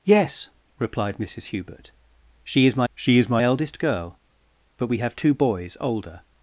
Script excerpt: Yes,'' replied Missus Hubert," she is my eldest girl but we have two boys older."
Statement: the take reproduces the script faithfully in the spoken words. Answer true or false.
false